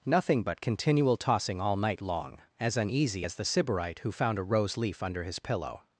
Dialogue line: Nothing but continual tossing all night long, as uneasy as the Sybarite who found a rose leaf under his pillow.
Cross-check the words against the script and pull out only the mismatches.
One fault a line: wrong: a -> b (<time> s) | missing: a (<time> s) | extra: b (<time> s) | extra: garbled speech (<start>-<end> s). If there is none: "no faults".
no faults